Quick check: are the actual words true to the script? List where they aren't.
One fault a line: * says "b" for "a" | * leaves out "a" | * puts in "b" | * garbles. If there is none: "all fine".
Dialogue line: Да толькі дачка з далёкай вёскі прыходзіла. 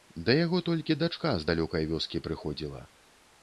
* puts in "яго"